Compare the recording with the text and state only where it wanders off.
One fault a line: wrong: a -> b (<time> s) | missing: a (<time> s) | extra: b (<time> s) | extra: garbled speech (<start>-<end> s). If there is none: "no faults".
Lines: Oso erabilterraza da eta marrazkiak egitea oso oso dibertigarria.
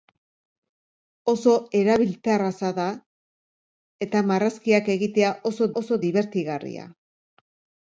no faults